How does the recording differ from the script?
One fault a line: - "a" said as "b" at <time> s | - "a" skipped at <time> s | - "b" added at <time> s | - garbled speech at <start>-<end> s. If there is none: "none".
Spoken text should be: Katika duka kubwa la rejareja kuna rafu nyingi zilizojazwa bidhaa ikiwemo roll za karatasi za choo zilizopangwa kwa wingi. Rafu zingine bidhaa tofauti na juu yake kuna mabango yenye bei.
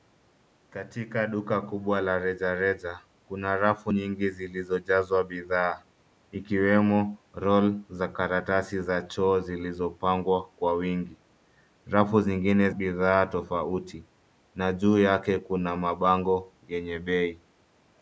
none